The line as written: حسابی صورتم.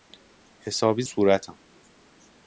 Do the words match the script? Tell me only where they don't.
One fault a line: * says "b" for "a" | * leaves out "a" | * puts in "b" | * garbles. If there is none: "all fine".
all fine